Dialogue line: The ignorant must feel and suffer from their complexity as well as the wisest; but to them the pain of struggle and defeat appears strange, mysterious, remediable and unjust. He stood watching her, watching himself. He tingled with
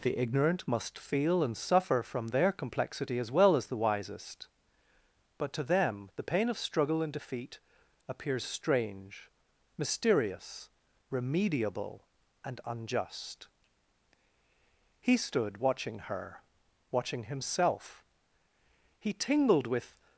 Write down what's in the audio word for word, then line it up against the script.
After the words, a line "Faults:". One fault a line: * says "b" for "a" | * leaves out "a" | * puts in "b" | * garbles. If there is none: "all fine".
The ignorant must feel and suffer from their complexity as well as the wisest; but to them the pain of struggle and defeat appears strange, mysterious, remediable and unjust. He stood watching her, watching himself. He tingled with
Faults:
all fine